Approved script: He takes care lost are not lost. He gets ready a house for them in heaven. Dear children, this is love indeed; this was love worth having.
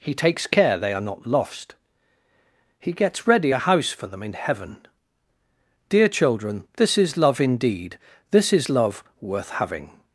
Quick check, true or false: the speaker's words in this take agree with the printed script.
false